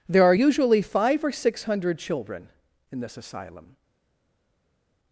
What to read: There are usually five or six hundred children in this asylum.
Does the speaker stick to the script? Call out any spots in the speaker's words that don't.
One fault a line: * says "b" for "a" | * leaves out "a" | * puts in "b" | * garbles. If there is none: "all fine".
all fine